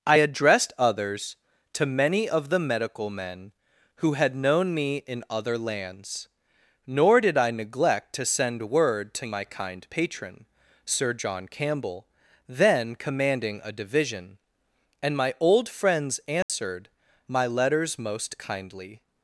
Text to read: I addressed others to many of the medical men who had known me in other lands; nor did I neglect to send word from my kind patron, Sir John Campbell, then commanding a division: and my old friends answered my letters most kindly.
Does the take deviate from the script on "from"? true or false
true